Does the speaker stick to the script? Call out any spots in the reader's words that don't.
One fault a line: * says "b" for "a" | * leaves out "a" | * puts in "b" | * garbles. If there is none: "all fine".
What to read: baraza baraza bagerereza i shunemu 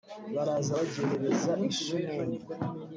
* leaves out "baraza"